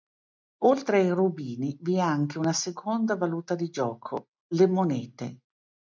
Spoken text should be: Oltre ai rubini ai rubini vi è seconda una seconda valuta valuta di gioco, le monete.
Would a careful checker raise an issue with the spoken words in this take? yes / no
yes